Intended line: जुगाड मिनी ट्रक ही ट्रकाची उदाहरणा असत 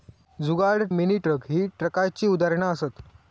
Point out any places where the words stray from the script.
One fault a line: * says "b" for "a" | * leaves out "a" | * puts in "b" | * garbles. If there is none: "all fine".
all fine